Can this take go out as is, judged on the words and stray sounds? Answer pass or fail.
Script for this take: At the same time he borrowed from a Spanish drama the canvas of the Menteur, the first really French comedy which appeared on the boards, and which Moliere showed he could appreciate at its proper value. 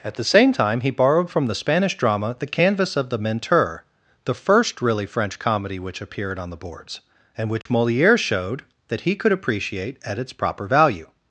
fail